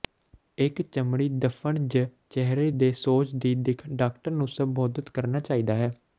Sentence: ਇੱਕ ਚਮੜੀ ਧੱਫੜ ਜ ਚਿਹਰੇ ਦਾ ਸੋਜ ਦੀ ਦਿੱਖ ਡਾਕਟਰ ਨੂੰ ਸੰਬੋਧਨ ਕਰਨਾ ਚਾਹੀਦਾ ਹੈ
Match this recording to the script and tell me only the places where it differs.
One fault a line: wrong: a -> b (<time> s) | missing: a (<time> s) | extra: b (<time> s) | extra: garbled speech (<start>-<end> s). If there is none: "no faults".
wrong: ਦਾ -> ਦੇ (2.7 s)